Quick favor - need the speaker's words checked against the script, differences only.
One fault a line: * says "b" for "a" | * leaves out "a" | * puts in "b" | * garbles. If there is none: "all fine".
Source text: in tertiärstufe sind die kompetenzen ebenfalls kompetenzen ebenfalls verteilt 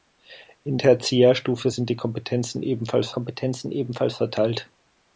all fine